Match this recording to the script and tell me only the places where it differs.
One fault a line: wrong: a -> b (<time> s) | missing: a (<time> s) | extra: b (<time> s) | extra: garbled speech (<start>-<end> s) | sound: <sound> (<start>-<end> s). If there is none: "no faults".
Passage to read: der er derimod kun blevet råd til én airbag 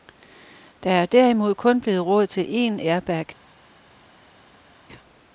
no faults